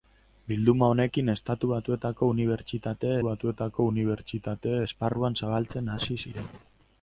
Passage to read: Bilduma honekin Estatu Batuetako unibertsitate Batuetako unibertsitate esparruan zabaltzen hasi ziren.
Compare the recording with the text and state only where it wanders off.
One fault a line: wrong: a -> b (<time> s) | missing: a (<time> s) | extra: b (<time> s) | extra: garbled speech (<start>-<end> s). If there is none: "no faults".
no faults